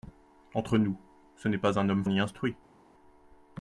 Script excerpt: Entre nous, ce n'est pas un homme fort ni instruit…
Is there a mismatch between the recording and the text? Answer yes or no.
yes